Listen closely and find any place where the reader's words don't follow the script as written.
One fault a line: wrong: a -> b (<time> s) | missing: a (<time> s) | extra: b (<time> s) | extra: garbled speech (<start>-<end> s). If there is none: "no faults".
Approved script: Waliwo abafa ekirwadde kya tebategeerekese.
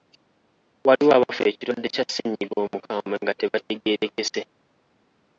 extra: ssennyiga omukambwe nga (2.1 s)